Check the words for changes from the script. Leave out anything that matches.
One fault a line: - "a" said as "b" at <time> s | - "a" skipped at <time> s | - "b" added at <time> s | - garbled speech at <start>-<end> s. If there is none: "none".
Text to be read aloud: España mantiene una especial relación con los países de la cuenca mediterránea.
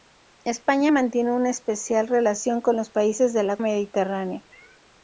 - "cuenca" skipped at 3.6 s